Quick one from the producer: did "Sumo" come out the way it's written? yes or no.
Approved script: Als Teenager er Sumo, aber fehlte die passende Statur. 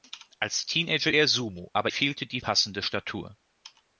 yes